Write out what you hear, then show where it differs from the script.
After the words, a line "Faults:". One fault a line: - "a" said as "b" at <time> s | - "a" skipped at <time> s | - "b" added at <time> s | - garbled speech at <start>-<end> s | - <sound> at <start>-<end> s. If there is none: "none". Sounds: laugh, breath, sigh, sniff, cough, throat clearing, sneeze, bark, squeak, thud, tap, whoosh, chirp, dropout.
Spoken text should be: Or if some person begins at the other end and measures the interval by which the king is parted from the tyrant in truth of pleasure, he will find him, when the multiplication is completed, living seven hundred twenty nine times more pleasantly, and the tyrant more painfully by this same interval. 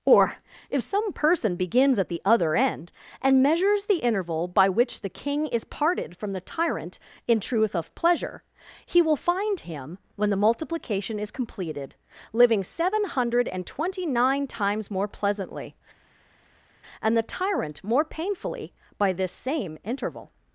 Or if some person begins at the other end and measures the interval by which the king is parted from the tyrant in truth of pleasure, he will find him, when the multiplication is completed, living seven hundred and twenty nine times more pleasantly, and the tyrant more painfully by this same interval.
Faults:
- "and" added at 13.5 s